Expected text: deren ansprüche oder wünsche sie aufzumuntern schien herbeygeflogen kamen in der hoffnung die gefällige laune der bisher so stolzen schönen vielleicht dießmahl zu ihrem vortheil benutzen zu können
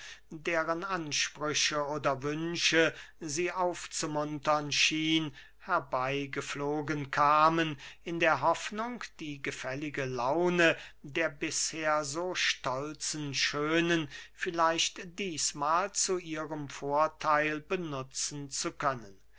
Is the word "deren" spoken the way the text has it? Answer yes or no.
yes